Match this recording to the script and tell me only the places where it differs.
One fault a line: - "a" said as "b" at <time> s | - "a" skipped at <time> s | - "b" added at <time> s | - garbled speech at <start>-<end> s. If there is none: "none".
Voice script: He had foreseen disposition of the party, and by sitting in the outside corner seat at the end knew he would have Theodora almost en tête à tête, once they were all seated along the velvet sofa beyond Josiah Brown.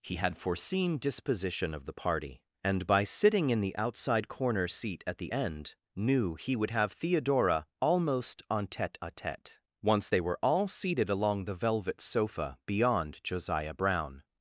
none